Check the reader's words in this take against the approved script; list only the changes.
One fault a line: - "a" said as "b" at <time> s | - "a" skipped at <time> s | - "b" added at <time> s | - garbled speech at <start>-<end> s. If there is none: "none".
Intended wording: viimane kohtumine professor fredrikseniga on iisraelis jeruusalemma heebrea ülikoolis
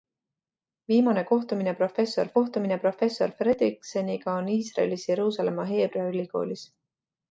- "kohtumine professor" added at 2.4 s